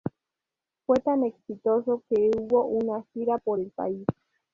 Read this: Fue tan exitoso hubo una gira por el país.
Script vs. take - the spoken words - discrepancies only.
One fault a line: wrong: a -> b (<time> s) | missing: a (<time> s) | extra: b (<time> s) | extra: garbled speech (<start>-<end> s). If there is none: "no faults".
extra: que (2.1 s)